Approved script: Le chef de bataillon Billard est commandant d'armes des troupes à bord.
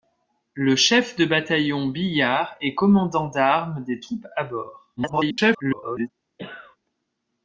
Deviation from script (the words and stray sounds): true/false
true